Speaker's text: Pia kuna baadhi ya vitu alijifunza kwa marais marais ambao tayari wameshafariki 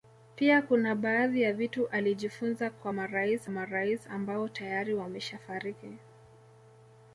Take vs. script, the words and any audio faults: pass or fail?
pass